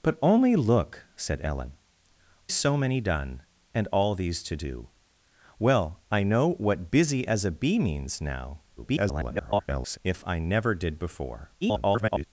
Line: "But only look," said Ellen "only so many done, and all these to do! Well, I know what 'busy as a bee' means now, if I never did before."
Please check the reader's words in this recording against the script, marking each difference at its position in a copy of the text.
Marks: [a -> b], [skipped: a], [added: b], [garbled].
"But only look," said Ellen [skipped: "only] so many done, and all these to do! Well, I know what 'busy as a bee' means now, [garbled] if I never did before." [garbled]